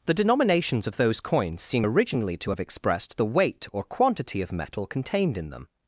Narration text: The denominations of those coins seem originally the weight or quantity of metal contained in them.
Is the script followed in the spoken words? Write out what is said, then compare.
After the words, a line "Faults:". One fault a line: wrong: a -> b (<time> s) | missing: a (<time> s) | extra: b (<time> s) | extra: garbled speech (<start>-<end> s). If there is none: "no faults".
The denominations of those coins seem originally to have expressed the weight or quantity of metal contained in them.
Faults:
extra: to have expressed (2.4 s)